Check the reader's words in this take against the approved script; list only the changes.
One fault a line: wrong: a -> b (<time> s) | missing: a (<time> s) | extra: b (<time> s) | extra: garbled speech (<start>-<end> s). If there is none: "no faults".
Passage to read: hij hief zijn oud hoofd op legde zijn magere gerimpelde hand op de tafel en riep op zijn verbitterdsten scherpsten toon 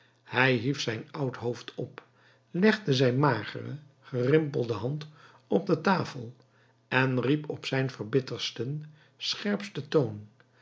no faults